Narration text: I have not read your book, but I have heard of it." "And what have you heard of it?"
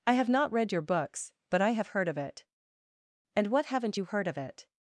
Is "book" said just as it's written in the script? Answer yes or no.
no